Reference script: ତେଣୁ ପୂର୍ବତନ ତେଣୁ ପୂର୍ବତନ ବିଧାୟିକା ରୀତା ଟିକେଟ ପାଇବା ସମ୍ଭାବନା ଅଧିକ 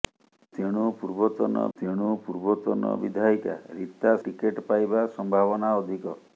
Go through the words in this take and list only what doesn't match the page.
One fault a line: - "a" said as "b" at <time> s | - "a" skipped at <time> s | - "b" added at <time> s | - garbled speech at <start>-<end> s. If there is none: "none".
none